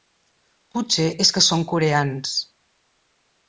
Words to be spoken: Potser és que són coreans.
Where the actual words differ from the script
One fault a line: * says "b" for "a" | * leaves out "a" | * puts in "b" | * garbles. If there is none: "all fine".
all fine